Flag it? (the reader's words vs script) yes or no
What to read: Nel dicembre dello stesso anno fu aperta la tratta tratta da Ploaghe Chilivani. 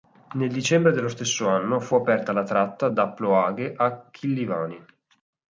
yes